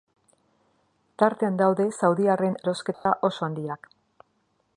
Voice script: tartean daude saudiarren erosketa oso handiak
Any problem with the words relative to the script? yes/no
no